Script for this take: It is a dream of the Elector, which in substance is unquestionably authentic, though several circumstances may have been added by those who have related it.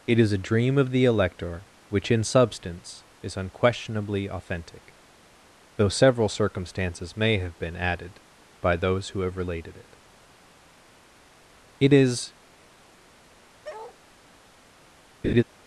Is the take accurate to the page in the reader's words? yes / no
no